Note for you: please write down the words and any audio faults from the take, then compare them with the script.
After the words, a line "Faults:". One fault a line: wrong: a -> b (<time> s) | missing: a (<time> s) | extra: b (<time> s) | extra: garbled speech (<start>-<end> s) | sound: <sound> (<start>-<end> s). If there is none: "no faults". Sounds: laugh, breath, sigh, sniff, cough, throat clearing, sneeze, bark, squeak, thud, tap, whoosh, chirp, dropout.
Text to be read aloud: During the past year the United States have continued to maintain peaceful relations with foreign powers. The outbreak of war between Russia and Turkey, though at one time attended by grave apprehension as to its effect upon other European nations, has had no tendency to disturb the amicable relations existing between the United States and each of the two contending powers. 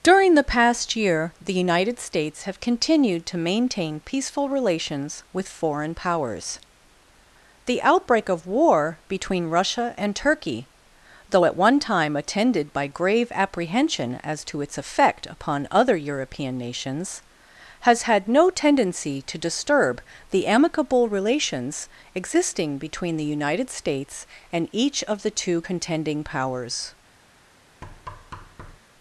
During the past year the United States have continued to maintain peaceful relations with foreign powers. The outbreak of war between Russia and Turkey, though at one time attended by grave apprehension as to its effect upon other European nations, has had no tendency to disturb the amicable relations existing between the United States and each of the two contending powers.
Faults:
sound: thud (27.8-28.8 s)